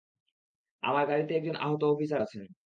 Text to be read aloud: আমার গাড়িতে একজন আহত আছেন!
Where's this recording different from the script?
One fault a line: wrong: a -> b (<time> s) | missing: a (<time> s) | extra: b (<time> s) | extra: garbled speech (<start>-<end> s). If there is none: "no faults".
extra: অফিসার (1.9 s)